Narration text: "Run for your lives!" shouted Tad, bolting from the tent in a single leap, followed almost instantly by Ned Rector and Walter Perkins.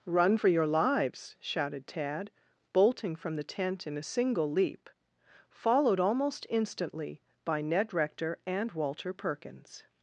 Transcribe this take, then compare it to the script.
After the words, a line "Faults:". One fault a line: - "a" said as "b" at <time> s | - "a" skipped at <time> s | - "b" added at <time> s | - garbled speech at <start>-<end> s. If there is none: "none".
"Run for your lives!" shouted Tad, bolting from the tent in a single leap, followed almost instantly by Ned Rector and Walter Perkins.
Faults:
none